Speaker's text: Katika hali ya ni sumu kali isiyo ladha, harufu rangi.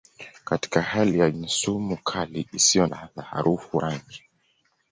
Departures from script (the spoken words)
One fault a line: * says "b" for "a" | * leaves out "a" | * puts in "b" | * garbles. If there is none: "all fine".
all fine